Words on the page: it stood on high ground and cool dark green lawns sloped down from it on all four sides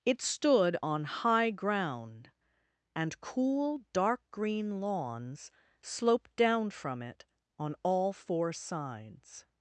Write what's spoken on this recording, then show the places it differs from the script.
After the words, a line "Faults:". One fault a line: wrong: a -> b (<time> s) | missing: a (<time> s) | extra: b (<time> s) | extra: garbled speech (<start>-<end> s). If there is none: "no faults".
it stood on high ground and cool dark green lawns sloped down from it on all four sides
Faults:
no faults